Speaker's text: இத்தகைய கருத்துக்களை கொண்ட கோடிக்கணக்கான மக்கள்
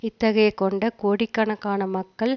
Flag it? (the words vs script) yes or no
yes